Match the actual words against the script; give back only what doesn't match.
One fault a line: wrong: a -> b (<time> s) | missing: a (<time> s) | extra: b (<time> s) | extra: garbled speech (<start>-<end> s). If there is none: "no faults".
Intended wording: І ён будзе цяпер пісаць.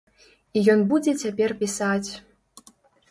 no faults